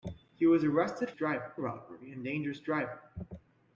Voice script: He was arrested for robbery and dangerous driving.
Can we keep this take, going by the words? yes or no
no